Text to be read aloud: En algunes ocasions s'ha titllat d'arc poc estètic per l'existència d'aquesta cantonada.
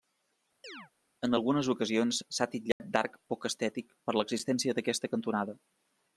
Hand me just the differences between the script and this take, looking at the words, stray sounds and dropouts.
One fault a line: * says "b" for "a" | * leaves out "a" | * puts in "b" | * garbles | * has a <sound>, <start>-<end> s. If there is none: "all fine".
* has a chirp, 0.6-0.9 s
* has a dropout, 2.7-2.8 s